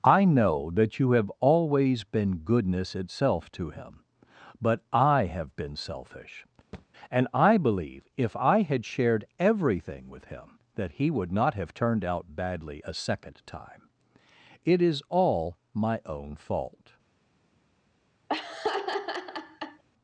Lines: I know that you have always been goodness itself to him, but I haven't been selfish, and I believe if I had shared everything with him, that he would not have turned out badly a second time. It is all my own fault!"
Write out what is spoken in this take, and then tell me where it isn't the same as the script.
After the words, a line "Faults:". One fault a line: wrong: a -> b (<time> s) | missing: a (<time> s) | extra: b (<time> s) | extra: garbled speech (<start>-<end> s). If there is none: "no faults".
I know that you have always been goodness itself to him, but I have been selfish, and I believe if I had shared everything with him, that he would not have turned out badly a second time. It is all my own fault!"
Faults:
wrong: haven't -> have (5.2 s)